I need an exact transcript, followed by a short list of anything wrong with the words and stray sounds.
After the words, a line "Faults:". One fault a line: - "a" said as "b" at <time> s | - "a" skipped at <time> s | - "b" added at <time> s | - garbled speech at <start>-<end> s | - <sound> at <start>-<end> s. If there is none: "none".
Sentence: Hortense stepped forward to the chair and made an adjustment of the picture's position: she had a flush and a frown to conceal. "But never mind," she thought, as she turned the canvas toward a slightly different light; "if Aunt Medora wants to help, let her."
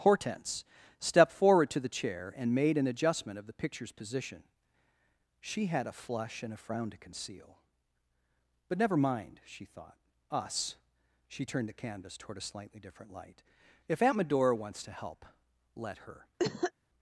Hortense stepped forward to the chair and made an adjustment of the picture's position: she had a flush and a frown to conceal. "But never mind," she thought, us she turned the canvas toward a slightly different light; "if Aunt Medora wants to help, let her."
Faults:
- "as" said as "us" at 10.3 s
- cough at 16.4-16.7 s